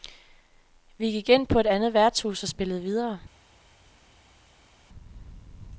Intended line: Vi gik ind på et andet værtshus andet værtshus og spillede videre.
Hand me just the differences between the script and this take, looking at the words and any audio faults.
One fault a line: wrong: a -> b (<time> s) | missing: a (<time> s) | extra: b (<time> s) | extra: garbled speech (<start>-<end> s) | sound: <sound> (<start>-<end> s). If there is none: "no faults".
missing: andet værtshus (2.4 s)